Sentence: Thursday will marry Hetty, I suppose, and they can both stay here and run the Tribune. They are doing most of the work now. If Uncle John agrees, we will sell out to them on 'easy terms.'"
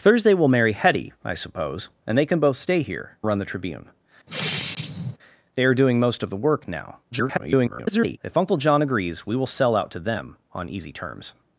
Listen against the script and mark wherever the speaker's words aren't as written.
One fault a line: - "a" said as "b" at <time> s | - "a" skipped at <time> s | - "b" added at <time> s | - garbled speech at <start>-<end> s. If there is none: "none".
- "and" skipped at 3.2 s
- garbled speech at 7.1-8.2 s